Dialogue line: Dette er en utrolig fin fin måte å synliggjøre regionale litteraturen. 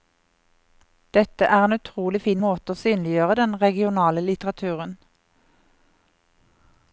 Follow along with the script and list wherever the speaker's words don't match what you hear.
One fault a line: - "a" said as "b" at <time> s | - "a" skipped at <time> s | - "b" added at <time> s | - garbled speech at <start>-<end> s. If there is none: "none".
- "fin" skipped at 2.4 s
- "den" added at 3.4 s